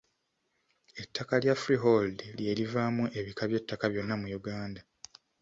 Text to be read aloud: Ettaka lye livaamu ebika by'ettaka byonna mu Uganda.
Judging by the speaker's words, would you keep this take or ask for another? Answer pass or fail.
fail